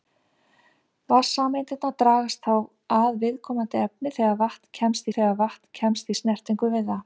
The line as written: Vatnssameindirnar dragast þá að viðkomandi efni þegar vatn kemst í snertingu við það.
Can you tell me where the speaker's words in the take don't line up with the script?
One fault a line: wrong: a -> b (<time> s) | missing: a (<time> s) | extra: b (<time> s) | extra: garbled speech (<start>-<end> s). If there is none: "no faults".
extra: þegar vatn kemst (5.1 s)